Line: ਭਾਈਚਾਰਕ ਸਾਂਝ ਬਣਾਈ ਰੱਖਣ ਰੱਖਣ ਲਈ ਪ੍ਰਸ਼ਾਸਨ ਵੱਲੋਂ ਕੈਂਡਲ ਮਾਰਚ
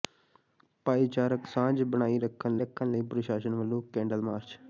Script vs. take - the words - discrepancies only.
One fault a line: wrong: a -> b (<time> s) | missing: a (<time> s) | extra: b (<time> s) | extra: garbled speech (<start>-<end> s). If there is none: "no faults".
no faults